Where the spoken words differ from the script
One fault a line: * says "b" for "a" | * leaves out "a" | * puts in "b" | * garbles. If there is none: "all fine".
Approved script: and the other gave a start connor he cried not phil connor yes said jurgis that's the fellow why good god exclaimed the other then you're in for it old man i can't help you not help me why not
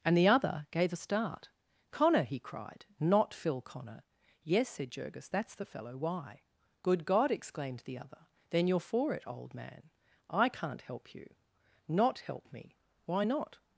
* leaves out "in"